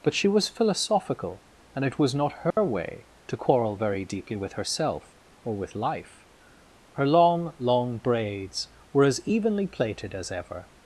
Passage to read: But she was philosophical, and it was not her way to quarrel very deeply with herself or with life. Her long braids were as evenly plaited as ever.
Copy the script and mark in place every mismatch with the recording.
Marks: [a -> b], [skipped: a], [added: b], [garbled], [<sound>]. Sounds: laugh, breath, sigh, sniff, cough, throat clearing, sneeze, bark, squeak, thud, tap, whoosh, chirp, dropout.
But she was philosophical, and it was not her [dropout] way to quarrel very deeply with herself or with life. Her long [added: long] braids were as evenly plaited as ever.